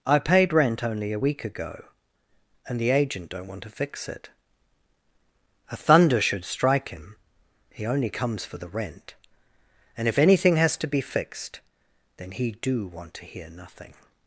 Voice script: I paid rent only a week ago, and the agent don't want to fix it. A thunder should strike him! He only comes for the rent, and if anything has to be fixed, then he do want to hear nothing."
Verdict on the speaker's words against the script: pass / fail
pass